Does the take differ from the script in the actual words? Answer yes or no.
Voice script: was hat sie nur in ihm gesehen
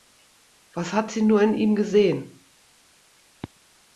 no